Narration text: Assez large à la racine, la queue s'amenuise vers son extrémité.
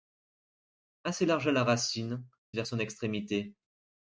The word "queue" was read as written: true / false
false